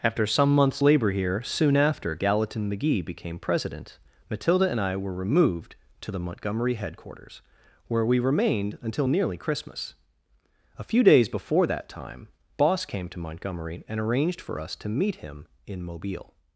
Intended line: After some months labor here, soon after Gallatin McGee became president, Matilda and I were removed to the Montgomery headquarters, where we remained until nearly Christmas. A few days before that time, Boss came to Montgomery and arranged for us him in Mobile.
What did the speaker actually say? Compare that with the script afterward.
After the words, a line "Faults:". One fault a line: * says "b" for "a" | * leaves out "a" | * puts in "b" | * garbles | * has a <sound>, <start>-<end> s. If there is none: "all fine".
After some months labor here, soon after Gallatin McGee became president, Matilda and I were removed to the Montgomery headquarters, where we remained until nearly Christmas. A few days before that time, Boss came to Montgomery and arranged for us to meet him in Mobile.
Faults:
* puts in "to meet"